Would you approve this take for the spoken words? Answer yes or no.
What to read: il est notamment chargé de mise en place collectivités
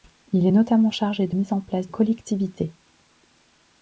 yes